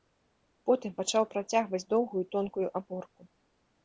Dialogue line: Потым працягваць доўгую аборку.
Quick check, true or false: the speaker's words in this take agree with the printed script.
false